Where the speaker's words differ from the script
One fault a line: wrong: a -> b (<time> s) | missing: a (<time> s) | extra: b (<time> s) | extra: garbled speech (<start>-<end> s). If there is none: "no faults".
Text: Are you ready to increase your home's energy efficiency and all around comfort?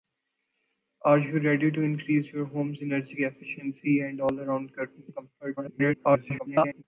extra: garbled speech (5.6-6.8 s)